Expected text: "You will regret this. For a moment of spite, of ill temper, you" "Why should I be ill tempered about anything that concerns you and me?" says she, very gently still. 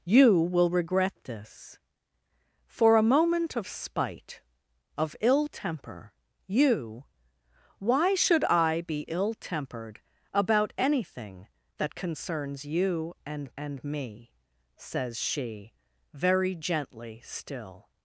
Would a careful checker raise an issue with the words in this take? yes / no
yes